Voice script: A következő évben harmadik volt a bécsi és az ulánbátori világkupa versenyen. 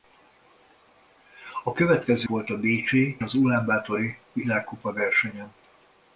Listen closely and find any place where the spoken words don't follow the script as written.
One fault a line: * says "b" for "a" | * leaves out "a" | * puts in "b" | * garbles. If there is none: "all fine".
* leaves out "évben harmadik"
* leaves out "és"